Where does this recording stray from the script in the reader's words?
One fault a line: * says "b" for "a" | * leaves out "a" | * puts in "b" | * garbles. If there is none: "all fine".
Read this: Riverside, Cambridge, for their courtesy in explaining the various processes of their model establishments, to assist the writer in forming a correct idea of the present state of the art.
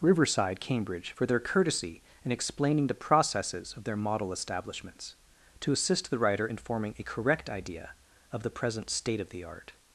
* leaves out "various"